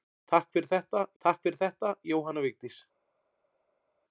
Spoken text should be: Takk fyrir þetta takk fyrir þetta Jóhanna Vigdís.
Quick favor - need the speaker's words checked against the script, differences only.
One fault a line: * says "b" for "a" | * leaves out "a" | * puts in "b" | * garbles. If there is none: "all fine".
all fine